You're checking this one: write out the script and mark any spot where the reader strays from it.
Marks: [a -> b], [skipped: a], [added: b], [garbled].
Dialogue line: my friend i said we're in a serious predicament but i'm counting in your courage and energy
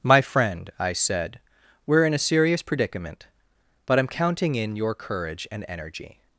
my friend i said we're in a serious predicament but i'm counting in your courage and energy